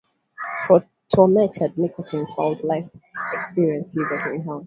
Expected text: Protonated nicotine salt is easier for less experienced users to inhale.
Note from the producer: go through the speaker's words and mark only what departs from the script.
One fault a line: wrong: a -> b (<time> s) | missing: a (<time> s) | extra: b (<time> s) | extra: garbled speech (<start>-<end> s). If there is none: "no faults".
missing: is easier for (2.6 s)